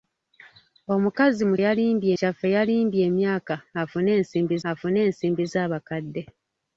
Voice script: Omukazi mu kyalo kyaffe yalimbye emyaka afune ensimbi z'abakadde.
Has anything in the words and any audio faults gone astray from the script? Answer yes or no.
yes